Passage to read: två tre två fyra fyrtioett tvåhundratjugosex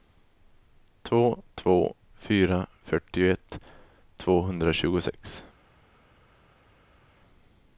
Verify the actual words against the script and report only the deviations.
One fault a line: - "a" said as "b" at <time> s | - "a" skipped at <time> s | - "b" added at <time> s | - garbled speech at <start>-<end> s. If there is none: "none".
- "tre" skipped at 1.4 s